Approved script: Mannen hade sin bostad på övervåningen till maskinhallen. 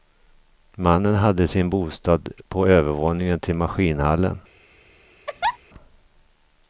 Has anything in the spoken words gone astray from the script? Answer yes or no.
no